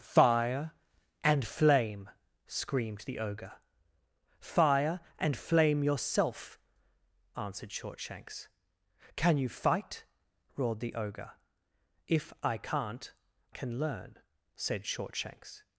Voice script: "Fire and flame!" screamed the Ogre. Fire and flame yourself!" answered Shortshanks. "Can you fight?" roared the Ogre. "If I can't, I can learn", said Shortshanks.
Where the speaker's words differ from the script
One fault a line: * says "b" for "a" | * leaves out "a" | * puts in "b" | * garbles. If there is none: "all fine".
* leaves out "I"